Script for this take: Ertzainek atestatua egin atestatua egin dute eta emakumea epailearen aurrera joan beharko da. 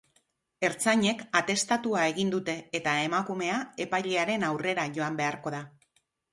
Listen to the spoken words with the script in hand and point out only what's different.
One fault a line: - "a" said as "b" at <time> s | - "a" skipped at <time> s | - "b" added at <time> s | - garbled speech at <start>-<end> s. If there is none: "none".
- "atestatua egin" skipped at 2.3 s